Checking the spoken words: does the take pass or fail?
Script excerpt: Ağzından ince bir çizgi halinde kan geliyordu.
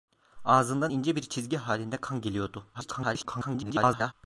fail